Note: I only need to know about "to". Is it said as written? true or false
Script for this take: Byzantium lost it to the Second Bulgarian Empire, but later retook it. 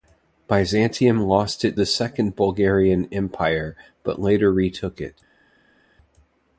false